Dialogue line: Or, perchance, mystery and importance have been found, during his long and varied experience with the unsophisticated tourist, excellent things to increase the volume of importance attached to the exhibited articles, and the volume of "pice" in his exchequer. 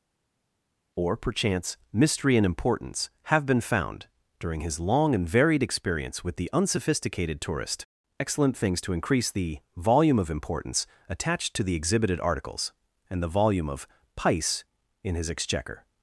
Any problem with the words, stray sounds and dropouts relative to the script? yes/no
no